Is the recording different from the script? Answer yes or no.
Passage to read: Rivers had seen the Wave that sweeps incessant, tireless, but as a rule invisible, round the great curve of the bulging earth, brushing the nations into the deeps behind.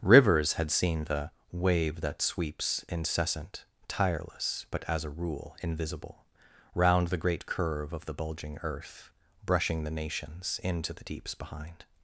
no